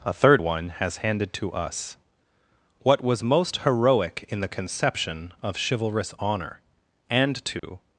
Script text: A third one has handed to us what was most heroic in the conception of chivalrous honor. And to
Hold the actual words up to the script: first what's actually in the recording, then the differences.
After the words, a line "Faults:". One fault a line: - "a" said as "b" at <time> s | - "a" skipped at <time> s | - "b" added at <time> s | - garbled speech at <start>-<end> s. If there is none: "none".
A third one has handed to us what was most heroic in the conception of chivalrous honor. And to
Faults:
none